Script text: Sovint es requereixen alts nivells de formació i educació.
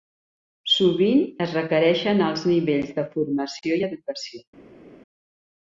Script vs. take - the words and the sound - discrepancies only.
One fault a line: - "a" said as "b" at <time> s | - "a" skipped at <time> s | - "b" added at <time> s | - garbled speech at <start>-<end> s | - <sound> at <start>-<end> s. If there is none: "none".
none